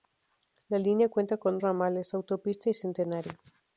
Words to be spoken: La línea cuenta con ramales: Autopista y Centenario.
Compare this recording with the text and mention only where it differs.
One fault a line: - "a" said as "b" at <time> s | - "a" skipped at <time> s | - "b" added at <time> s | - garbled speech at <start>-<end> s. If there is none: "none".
none